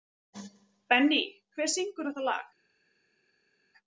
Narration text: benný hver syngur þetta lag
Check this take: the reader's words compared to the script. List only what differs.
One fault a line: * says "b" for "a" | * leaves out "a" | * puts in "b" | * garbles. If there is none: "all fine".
all fine